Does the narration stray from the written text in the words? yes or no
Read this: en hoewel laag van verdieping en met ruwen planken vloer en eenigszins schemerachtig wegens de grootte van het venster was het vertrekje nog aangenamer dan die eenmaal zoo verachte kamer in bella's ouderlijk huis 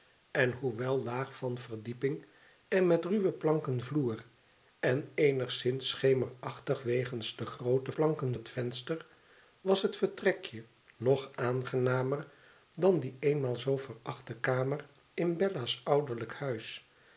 yes